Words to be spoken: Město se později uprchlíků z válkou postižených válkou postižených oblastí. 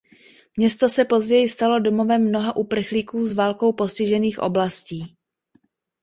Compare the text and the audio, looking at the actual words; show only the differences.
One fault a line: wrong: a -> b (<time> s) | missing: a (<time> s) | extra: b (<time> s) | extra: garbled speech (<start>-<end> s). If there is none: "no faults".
extra: stalo domovem mnoha (1.5 s)
missing: válkou postižených (4.4 s)